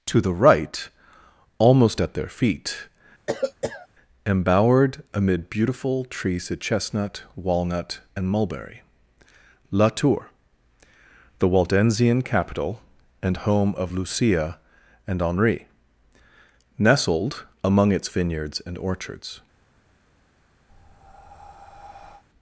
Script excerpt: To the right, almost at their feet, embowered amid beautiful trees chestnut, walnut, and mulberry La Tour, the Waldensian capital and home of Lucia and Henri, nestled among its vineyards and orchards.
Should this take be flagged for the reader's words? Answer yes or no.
yes